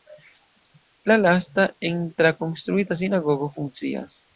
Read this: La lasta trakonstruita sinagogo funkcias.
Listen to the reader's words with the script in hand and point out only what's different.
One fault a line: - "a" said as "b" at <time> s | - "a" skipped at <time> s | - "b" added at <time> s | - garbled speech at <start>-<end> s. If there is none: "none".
- "en" added at 1.8 s